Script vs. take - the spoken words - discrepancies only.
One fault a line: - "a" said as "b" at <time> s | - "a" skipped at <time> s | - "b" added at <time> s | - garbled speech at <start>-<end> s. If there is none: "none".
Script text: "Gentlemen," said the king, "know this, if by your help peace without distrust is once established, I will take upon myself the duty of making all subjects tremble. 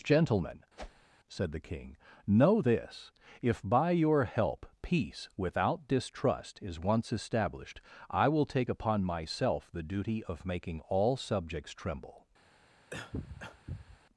none